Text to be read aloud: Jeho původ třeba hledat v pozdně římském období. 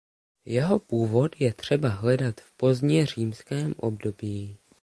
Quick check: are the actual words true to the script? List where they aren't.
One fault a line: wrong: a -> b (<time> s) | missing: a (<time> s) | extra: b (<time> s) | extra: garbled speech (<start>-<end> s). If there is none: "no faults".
extra: je (1.4 s)